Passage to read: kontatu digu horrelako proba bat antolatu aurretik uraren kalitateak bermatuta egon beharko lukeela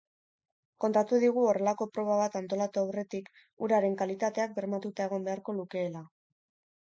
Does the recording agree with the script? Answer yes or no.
yes